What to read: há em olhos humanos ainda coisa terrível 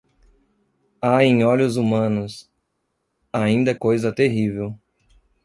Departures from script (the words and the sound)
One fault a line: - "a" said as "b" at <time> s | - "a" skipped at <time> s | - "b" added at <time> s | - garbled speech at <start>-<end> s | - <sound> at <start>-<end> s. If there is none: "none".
none